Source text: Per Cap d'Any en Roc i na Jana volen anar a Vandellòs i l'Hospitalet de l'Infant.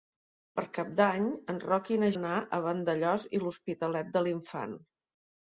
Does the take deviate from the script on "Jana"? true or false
true